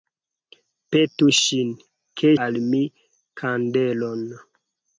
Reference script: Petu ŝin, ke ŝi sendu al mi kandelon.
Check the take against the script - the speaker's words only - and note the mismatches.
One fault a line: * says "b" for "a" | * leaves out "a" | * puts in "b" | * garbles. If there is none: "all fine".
* leaves out "ŝi sendu"